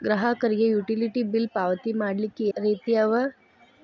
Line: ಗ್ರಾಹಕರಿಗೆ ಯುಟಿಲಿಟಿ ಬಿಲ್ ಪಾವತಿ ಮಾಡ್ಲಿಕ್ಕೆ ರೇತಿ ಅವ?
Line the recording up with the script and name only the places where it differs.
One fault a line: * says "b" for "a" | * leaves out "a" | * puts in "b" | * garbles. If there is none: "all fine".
all fine